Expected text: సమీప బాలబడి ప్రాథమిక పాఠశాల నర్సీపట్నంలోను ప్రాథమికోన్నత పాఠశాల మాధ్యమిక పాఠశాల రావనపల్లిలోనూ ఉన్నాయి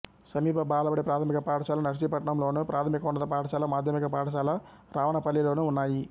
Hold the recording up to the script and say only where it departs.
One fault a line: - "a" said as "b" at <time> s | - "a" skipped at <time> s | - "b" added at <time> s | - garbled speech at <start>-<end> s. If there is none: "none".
none